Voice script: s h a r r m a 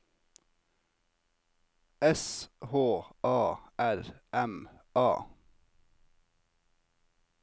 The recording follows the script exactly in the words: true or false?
false